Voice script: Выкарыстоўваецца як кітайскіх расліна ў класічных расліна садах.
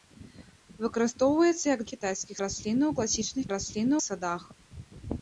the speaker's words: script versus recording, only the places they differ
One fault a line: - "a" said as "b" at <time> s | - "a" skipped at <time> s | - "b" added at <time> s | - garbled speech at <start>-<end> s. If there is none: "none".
none